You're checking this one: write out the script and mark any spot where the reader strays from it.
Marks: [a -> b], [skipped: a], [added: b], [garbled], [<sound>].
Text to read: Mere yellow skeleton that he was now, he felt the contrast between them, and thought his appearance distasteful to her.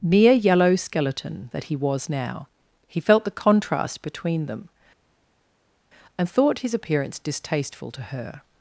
Mere yellow skeleton that he was now, he felt the contrast between them, and thought his appearance distasteful to her.